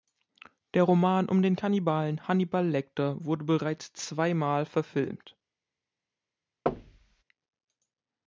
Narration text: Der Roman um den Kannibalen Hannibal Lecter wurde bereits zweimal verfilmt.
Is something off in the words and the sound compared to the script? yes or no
yes